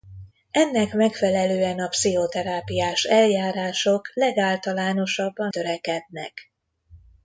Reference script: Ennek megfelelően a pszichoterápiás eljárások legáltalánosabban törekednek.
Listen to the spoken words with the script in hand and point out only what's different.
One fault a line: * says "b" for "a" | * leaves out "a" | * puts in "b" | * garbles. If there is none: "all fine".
all fine